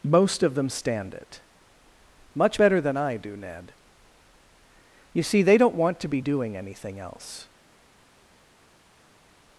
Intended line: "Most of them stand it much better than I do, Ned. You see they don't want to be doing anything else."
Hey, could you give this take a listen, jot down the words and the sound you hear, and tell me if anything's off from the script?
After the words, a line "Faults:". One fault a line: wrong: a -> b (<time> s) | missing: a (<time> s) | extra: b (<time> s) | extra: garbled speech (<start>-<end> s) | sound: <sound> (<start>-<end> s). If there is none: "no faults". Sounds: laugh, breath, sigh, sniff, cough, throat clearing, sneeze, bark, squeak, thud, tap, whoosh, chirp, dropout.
"Most of them stand it much better than I do, Ned. You see they don't want to be doing anything else."
Faults:
no faults